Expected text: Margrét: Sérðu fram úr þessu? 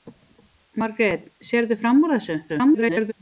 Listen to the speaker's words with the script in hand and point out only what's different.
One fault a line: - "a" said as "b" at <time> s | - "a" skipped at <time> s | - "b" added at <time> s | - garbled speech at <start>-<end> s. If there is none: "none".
- garbled speech at 2.5-3.1 s